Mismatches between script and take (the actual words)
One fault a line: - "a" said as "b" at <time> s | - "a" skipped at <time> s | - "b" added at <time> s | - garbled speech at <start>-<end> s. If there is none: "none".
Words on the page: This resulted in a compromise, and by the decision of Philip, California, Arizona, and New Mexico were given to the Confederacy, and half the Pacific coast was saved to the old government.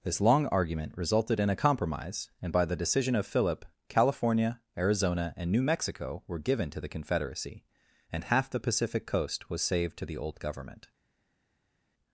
- "long argument" added at 0.2 s